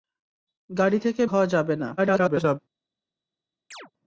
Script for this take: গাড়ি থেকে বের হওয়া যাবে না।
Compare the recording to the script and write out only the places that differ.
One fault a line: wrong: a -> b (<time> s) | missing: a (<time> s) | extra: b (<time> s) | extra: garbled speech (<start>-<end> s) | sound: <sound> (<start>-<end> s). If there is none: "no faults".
missing: বের (1.2 s)
extra: garbled speech (2.0-2.6 s)
sound: chirp (3.7-3.9 s)